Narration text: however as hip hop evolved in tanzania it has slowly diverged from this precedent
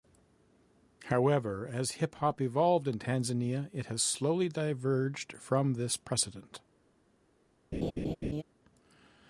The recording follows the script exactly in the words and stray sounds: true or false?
false